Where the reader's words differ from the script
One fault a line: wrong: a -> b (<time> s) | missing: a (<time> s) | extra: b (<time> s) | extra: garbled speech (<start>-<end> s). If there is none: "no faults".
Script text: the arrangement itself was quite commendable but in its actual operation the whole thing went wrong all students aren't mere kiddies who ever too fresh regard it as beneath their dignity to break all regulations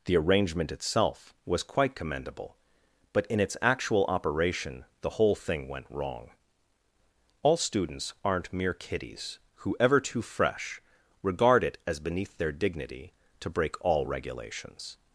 no faults